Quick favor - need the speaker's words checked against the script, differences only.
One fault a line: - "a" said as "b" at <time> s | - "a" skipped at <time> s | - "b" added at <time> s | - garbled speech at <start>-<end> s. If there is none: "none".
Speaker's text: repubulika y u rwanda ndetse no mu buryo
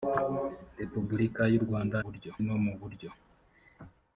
- "ndetse" said as "buryo" at 2.0 s